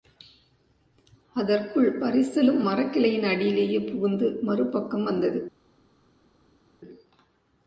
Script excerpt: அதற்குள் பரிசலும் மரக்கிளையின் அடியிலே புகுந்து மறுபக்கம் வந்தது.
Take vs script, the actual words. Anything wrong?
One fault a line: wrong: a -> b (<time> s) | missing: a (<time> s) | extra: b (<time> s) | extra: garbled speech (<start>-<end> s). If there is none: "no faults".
no faults